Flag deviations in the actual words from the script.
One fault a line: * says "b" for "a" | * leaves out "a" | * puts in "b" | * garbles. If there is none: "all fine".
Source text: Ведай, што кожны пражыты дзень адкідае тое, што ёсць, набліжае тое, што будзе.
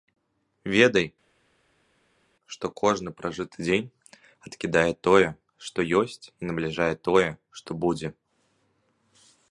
* puts in "і"